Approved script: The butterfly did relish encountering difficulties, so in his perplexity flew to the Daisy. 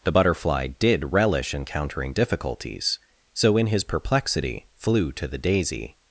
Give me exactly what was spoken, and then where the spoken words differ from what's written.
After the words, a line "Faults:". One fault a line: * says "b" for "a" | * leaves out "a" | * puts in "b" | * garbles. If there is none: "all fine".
The butterfly did relish encountering difficulties, so in his perplexity flew to the Daisy.
Faults:
all fine